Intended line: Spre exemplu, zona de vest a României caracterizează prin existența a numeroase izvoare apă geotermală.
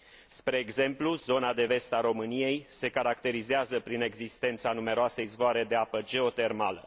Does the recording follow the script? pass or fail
fail